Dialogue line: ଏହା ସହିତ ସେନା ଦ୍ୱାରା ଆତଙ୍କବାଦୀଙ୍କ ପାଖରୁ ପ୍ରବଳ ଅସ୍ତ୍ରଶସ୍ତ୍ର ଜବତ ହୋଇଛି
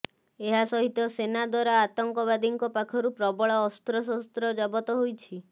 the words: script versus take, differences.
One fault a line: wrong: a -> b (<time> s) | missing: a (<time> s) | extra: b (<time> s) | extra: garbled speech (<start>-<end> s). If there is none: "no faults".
no faults